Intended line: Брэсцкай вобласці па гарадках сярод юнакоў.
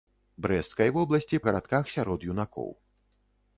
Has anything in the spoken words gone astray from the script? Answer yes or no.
yes